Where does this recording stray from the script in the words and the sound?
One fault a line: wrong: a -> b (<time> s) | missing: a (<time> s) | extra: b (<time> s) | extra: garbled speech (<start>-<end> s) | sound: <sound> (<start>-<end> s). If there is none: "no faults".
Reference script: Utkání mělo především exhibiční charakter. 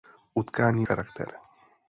missing: mělo především exhibiční (0.9 s)